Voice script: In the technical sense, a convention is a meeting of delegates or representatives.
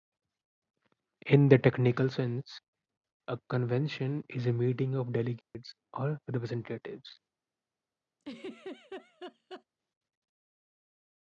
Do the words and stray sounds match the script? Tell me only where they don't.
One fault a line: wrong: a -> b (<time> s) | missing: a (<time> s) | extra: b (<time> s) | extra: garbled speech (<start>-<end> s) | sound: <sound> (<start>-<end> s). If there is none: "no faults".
sound: dropout (5.4-5.5 s)
sound: laugh (8.2-9.6 s)